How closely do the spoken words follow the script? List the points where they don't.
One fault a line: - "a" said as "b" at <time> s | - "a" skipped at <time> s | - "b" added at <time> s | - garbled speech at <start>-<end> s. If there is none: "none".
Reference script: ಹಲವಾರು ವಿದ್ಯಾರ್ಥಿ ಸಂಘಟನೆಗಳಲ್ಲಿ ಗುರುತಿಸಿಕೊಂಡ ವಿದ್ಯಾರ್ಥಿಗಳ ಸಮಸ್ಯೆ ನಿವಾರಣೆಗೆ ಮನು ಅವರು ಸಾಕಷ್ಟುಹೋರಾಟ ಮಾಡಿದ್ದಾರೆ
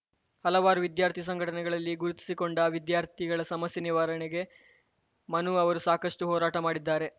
none